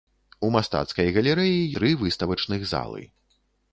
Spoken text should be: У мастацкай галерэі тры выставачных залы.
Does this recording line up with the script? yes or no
yes